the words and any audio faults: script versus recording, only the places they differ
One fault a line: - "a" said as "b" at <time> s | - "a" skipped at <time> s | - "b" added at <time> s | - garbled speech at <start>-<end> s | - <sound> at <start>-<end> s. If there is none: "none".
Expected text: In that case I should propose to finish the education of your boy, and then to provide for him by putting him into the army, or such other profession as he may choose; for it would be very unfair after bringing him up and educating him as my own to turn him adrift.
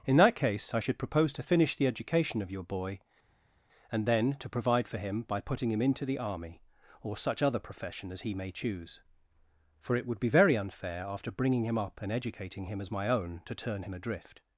none